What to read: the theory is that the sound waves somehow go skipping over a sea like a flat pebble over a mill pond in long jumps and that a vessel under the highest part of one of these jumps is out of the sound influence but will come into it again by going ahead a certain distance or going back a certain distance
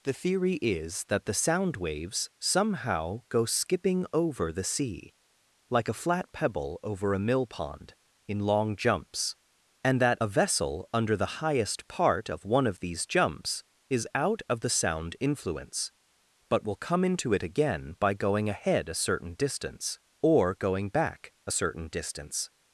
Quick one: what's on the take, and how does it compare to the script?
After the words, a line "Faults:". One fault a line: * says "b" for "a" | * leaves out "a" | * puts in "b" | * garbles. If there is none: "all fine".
the theory is that the sound waves somehow go skipping over the sea like a flat pebble over a mill pond in long jumps and that a vessel under the highest part of one of these jumps is out of the sound influence but will come into it again by going ahead a certain distance or going back a certain distance
Faults:
* says "the" for "a"